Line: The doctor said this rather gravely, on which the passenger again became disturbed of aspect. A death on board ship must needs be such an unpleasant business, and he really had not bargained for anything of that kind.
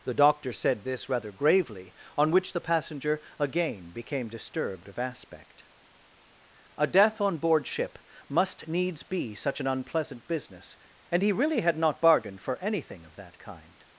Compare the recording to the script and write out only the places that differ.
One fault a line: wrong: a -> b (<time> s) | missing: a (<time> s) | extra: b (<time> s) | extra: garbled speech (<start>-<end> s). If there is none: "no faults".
no faults